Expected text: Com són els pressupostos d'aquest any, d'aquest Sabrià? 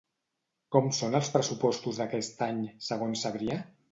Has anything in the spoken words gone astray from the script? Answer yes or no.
yes